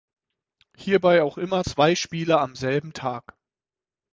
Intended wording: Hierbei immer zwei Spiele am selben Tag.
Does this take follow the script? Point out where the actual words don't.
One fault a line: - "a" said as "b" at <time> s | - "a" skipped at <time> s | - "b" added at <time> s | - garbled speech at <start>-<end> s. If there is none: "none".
- "auch" added at 1.2 s